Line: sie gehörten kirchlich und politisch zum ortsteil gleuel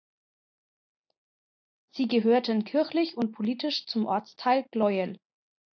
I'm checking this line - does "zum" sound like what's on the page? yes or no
yes